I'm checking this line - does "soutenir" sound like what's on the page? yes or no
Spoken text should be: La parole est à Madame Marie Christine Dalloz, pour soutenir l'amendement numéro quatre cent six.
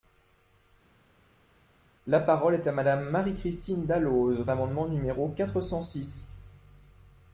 no